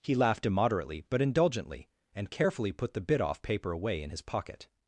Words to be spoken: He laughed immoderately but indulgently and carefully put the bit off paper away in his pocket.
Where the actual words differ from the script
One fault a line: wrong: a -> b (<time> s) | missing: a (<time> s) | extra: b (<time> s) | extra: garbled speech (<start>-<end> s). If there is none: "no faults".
no faults